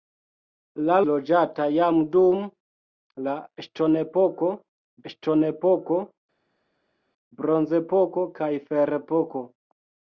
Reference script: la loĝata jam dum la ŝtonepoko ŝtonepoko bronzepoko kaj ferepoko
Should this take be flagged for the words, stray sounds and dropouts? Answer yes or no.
no